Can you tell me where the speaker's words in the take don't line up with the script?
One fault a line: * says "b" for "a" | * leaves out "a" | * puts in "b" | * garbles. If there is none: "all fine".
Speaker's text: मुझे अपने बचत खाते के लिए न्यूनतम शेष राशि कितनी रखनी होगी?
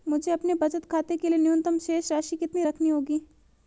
all fine